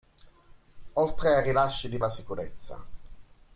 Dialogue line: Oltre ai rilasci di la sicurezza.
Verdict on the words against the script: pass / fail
pass